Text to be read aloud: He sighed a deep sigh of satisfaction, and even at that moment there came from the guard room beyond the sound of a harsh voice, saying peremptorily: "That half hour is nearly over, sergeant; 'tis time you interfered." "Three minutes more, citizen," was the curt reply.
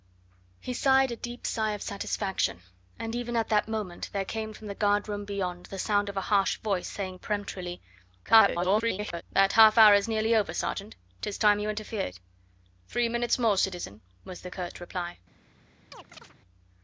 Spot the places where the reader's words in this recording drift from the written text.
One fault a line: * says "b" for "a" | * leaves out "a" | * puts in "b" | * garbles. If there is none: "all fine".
* garbles